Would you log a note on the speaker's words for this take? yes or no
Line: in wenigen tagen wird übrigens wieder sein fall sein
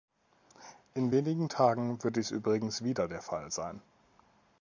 yes